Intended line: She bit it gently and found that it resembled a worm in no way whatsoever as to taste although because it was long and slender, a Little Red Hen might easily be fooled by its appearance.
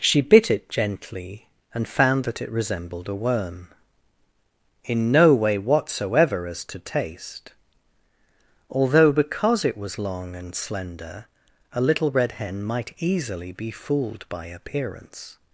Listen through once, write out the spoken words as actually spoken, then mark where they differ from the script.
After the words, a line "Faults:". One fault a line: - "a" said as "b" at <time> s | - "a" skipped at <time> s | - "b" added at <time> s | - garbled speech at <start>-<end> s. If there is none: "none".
She bit it gently and found that it resembled a worm in no way whatsoever as to taste although because it was long and slender, a Little Red Hen might easily be fooled by appearance.
Faults:
- "its" skipped at 14.5 s